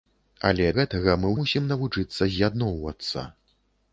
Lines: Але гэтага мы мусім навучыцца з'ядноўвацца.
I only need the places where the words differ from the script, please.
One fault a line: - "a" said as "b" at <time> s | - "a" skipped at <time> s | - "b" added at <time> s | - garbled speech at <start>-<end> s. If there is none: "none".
none